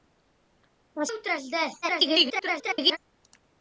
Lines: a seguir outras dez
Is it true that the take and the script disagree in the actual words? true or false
true